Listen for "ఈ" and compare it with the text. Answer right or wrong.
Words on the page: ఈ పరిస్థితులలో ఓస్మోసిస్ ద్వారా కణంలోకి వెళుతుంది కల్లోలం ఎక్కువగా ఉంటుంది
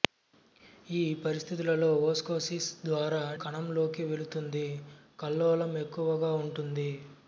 right